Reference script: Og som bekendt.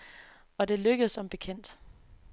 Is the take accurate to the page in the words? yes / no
no